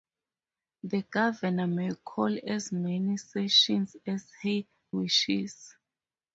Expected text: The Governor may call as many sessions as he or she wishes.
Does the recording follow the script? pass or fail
fail